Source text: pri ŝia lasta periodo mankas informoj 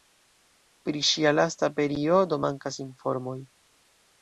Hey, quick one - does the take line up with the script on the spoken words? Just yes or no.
yes